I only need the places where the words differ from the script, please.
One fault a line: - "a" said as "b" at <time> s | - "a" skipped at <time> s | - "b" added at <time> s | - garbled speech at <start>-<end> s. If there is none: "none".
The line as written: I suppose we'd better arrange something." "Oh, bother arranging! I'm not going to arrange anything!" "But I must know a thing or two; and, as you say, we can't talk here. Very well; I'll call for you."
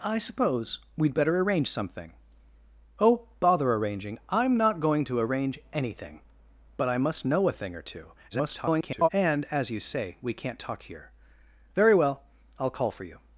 - garbled speech at 8.3-9.1 s